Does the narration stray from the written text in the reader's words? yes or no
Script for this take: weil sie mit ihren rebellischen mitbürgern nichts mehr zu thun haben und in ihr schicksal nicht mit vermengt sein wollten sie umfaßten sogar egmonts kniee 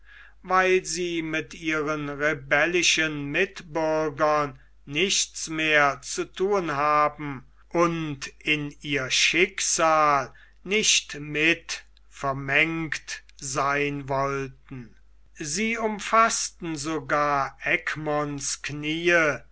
no